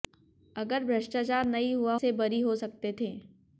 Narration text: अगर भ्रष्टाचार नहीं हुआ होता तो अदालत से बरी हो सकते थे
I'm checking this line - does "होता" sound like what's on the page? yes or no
no